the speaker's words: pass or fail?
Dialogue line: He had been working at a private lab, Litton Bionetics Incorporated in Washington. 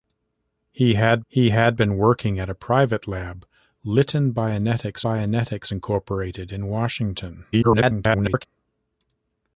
fail